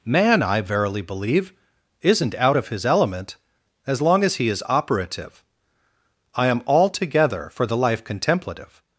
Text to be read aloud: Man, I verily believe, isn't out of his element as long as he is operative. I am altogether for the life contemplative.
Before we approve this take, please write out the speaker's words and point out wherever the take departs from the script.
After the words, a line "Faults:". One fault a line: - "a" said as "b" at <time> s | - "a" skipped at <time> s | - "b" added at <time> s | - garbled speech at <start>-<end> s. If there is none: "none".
Man, I verily believe, isn't out of his element as long as he is operative. I am altogether for the life contemplative.
Faults:
none